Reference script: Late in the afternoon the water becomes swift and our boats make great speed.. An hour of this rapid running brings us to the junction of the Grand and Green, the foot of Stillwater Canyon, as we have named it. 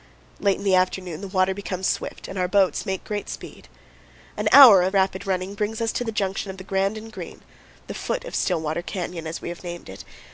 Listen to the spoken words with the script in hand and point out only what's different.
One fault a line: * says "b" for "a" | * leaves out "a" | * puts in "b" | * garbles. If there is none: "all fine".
* leaves out "this"